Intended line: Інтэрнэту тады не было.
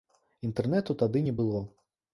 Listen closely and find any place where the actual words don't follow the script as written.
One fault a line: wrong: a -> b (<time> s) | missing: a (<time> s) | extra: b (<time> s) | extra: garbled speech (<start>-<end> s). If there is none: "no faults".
no faults